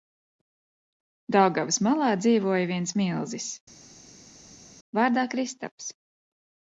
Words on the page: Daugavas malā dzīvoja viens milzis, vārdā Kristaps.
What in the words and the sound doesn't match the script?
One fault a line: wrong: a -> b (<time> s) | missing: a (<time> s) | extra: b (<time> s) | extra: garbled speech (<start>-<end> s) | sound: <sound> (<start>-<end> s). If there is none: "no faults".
no faults